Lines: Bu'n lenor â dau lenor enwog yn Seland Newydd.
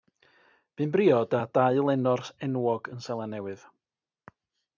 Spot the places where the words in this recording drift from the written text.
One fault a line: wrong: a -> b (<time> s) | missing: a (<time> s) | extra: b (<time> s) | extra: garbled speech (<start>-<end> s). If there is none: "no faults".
wrong: lenor -> briod (0.9 s)